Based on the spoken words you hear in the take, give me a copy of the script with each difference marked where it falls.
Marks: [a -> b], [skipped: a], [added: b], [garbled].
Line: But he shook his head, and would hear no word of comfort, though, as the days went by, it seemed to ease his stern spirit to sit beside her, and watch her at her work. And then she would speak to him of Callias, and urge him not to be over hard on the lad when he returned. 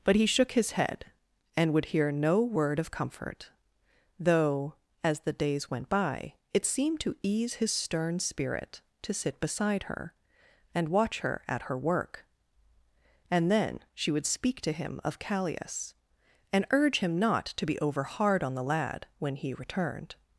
But he shook his head, and would hear no word of comfort, though, as the days went by, it seemed to ease his stern spirit to sit beside her, and watch her at her work. And then she would speak to him of Callias, and urge him not to be over hard on the lad when he returned.